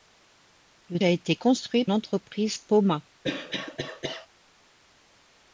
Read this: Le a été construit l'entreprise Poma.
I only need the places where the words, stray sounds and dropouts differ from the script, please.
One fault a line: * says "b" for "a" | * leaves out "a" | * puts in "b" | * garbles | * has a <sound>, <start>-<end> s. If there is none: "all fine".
* has a cough, 3.2-4.3 s